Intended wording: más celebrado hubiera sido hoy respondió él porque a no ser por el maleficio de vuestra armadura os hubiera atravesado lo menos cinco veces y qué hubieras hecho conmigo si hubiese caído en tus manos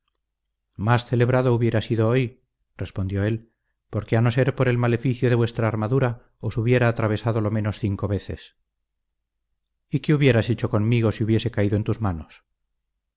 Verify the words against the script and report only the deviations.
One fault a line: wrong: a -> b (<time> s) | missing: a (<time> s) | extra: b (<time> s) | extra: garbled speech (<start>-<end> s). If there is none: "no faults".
no faults